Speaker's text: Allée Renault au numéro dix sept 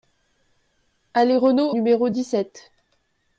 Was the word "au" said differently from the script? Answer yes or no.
yes